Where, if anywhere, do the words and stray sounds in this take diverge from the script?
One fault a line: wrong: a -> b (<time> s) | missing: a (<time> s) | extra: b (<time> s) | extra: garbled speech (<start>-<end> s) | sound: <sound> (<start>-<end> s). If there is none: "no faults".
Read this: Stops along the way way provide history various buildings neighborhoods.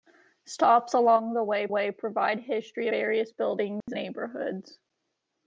sound: dropout (3.8-3.9 s)